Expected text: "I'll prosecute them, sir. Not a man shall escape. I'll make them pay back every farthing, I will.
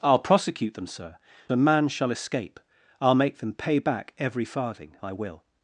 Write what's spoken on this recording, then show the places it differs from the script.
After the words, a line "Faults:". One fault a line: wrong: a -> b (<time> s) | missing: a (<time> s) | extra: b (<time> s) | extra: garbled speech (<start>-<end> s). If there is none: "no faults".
"I'll prosecute them, sir. A man shall escape. I'll make them pay back every farthing, I will.
Faults:
missing: Not (1.2 s)